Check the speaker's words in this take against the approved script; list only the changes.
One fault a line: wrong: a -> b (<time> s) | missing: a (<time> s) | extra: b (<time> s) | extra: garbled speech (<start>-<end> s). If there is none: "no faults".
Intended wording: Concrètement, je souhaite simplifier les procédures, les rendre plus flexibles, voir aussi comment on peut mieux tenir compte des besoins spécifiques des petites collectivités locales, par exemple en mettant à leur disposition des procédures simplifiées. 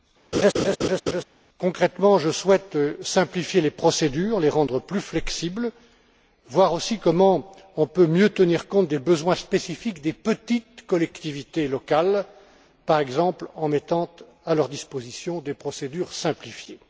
no faults